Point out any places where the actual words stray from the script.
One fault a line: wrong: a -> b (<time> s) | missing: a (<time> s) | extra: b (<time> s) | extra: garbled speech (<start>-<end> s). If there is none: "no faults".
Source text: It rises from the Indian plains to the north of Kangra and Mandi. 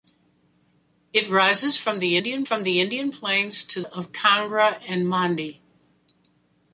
extra: from the Indian (2.4 s)
missing: the north (3.8 s)